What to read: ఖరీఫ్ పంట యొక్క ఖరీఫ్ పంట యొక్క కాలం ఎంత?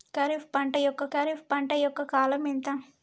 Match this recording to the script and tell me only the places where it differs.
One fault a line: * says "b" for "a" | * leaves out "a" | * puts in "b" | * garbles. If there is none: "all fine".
all fine